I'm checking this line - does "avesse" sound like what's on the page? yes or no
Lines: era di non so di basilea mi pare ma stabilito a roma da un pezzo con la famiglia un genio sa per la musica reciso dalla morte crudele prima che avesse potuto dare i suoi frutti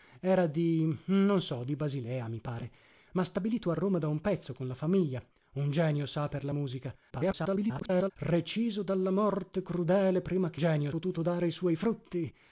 no